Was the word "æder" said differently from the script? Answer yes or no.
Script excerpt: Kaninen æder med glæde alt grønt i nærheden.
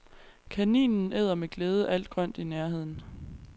no